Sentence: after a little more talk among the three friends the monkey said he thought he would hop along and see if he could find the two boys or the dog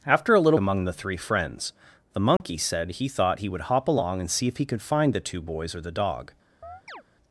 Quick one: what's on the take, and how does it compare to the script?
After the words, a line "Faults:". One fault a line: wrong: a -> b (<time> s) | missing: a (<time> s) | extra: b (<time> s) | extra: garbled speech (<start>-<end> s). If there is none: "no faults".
after a little among the three friends the monkey said he thought he would hop along and see if he could find the two boys or the dog
Faults:
missing: more talk (0.6 s)